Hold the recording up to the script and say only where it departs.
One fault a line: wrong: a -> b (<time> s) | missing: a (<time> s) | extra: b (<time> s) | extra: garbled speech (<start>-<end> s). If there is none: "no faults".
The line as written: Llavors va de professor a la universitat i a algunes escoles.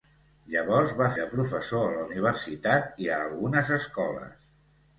no faults